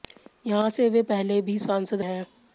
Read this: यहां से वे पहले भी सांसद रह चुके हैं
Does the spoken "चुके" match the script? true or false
false